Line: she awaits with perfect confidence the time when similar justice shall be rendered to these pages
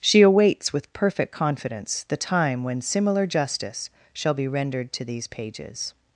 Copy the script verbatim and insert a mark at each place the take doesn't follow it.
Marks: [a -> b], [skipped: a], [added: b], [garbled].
she awaits with perfect confidence the time when similar justice shall be rendered to these pages